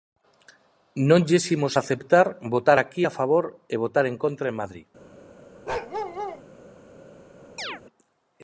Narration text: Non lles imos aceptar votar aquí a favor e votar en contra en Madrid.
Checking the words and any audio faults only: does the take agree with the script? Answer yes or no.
no